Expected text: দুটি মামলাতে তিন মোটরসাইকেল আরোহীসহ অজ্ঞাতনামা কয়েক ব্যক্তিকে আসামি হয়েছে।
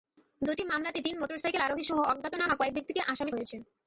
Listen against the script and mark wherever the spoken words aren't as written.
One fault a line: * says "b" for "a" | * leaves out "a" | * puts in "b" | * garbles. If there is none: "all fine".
all fine